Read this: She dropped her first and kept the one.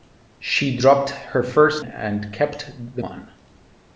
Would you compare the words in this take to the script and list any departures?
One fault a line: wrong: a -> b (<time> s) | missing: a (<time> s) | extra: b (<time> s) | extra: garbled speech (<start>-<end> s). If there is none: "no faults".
no faults